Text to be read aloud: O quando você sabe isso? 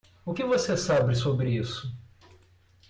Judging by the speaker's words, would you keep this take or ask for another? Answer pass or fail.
fail